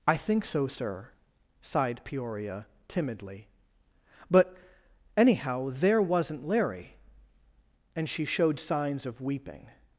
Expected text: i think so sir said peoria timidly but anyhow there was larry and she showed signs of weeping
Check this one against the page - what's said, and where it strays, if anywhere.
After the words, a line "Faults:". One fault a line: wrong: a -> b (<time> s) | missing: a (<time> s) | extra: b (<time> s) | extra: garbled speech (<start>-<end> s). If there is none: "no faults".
i think so sir sighed peoria timidly but anyhow there wasn't larry and she showed signs of weeping
Faults:
wrong: said -> sighed (1.6 s)
wrong: was -> wasn't (6.0 s)